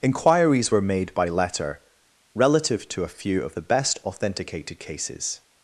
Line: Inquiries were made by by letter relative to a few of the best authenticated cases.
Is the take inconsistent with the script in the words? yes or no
yes